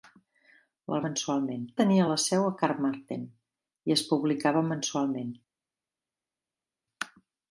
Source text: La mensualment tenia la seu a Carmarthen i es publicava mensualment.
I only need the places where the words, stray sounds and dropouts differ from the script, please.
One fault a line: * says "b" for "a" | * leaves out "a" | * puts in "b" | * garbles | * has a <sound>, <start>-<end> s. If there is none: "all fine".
all fine